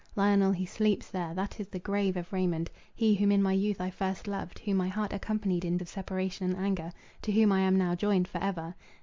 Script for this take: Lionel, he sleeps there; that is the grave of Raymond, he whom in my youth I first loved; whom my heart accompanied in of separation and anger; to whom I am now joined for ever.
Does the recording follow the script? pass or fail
pass